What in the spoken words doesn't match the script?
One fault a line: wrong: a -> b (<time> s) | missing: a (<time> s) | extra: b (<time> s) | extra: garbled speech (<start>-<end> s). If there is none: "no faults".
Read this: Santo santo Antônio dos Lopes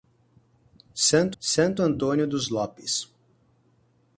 no faults